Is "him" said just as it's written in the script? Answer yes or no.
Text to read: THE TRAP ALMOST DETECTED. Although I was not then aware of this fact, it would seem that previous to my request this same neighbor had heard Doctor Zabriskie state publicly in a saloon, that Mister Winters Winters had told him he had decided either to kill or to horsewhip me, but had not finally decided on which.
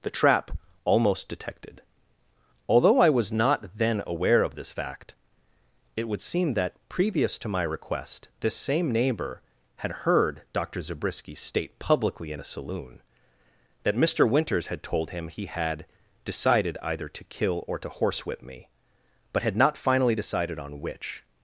yes